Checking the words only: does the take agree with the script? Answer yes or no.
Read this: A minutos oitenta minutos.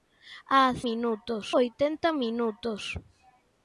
yes